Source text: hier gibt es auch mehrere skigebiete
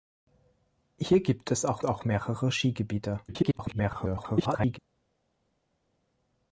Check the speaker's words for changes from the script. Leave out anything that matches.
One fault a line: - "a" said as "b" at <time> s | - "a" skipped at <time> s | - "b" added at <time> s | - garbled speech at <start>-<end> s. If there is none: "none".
- "auch" added at 1.8 s
- garbled speech at 3.3-4.8 s